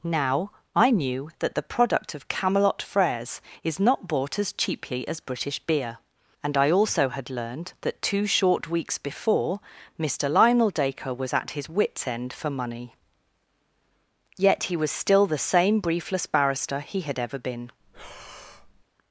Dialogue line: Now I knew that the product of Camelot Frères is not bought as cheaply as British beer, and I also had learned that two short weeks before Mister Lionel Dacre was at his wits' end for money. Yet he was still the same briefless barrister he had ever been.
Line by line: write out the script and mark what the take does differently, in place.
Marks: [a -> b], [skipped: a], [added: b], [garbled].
Now I knew that the product of Camelot Frères is not bought as cheaply as British beer, and I also had learned that two short weeks before Mister Lionel Dacre was at his wits' end for money. Yet he was still the same briefless barrister he had ever been.